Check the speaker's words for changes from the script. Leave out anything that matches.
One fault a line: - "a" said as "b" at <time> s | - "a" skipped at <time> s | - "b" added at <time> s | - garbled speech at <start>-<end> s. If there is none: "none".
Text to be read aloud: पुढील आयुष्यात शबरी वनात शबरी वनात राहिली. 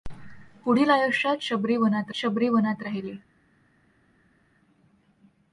none